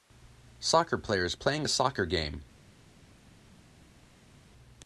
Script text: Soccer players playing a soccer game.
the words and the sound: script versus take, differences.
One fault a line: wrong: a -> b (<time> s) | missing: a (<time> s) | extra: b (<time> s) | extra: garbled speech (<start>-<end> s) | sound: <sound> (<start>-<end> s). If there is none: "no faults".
no faults